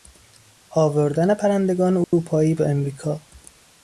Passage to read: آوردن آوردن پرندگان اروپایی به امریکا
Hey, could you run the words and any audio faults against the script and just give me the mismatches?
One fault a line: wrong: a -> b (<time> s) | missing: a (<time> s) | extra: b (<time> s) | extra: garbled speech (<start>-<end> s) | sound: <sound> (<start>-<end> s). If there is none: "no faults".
missing: آوردن (1.3 s)
sound: dropout (2.0-2.1 s)